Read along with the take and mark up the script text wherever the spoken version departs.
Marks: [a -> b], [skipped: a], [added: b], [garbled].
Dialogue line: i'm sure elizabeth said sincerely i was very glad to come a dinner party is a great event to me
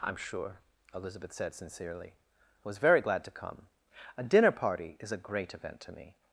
i'm sure elizabeth said sincerely i was very glad to come a dinner party is a great event to me